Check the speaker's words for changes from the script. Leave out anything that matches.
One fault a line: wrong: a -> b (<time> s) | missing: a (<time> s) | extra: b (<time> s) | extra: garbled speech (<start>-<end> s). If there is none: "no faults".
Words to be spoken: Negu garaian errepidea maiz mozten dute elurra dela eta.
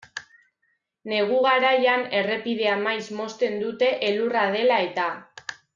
no faults